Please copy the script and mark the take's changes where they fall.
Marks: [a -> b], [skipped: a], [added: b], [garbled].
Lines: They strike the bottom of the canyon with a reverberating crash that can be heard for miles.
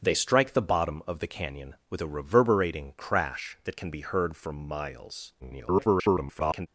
They strike the bottom of the canyon with a reverberating crash that can be heard for miles. [garbled]